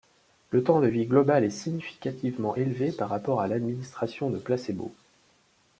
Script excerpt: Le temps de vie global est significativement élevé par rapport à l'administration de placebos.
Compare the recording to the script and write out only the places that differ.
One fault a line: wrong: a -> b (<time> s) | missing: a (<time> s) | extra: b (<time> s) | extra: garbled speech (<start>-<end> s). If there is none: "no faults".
no faults